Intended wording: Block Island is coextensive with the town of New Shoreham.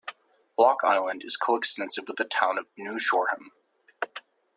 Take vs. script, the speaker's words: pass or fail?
pass